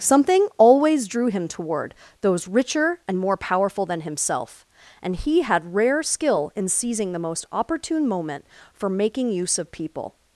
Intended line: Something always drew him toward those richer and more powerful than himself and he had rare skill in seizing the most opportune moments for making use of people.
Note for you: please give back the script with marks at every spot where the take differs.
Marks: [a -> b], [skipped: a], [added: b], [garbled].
Something always drew him toward those richer and more powerful than himself and he had rare skill in seizing the most opportune [moments -> moment] for making use of people.